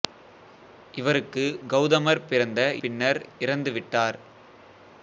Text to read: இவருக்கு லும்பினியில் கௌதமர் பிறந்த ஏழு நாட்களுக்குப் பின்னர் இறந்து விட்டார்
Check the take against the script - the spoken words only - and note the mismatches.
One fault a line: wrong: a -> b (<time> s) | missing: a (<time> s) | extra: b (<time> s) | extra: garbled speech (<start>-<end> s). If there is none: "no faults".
missing: லும்பினியில் (1.4 s)
missing: ஏழு நாட்களுக்குப் (2.6 s)